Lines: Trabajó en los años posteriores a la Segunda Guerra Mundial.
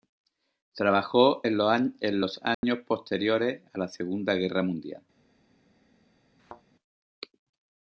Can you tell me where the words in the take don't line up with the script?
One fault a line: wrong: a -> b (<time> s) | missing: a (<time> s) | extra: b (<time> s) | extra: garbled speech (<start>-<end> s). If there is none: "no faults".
no faults